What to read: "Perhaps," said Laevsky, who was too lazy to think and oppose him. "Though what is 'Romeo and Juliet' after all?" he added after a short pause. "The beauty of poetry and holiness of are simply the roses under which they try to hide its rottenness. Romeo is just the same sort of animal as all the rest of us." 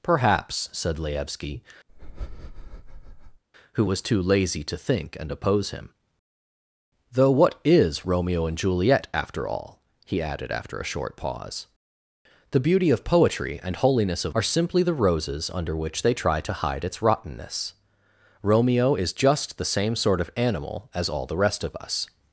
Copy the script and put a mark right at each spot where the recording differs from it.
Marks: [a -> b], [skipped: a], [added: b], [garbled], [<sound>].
"Perhaps," said Laevsky, [breath] who was too lazy to think and oppose him. "Though what is 'Romeo and Juliet' after all?" he added after a short pause. "The beauty of poetry and holiness of are simply the roses under which they try to hide its rottenness. Romeo is just the same sort of animal as all the rest of us."